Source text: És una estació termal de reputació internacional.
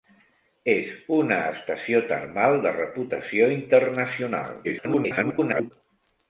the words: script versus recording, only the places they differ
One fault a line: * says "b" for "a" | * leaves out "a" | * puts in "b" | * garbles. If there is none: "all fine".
* garbles